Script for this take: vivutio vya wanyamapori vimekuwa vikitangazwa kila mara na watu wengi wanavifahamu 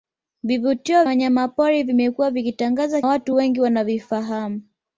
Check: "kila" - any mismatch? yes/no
yes